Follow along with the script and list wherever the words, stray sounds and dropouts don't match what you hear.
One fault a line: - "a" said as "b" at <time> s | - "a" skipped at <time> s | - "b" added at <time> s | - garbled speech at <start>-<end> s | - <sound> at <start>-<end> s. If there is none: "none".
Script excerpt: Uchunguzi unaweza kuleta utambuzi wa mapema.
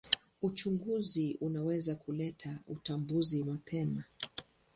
- "wa" skipped at 3.4 s